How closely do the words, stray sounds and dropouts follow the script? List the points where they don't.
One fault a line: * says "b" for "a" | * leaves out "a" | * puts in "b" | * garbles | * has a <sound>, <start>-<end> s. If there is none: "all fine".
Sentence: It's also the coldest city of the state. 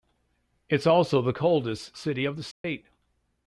* has a dropout, 2.5-2.6 s